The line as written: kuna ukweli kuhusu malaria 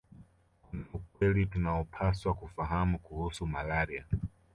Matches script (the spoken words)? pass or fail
fail